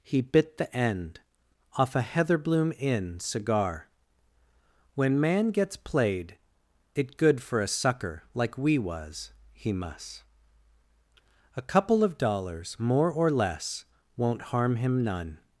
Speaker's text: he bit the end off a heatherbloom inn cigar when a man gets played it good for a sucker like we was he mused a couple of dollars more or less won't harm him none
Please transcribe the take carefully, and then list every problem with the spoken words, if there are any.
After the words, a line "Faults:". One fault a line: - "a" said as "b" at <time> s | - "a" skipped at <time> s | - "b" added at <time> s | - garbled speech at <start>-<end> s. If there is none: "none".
he bit the end off a heatherbloom inn cigar when man gets played it good for a sucker like we was he mus a couple of dollars more or less won't harm him none
Faults:
- "a" skipped at 5.2 s
- "mused" said as "mus" at 9.7 s